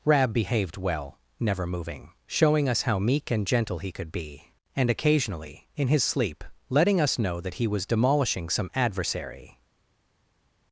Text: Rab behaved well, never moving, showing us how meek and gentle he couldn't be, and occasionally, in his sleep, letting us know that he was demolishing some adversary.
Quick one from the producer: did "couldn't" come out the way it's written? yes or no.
no